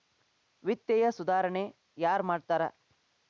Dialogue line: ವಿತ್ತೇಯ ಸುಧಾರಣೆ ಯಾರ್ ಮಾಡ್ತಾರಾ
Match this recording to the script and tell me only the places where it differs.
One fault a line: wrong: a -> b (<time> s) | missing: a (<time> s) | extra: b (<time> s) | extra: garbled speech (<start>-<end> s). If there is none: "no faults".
no faults